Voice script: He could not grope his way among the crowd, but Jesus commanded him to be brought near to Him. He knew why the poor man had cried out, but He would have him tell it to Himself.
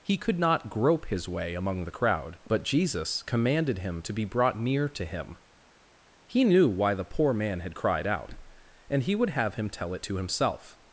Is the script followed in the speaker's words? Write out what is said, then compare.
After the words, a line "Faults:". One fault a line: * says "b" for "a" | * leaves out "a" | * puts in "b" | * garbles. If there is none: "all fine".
He could not grope his way among the crowd, but Jesus commanded him to be brought near to Him. He knew why the poor man had cried out, and He would have him tell it to Himself.
Faults:
* says "and" for "but"